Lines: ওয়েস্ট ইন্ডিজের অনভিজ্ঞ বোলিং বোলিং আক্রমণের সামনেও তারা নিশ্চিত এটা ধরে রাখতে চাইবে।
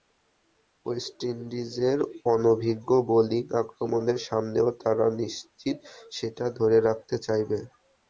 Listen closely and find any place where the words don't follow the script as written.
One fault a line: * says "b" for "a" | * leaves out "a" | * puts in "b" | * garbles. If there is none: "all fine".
* leaves out "বোলিং"
* says "সেটা" for "এটা"